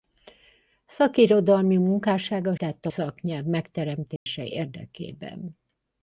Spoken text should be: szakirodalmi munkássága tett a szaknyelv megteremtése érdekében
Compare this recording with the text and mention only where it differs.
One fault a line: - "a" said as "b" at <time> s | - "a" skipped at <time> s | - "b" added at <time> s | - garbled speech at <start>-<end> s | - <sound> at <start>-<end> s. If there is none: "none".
- dropout at 4.2-4.3 s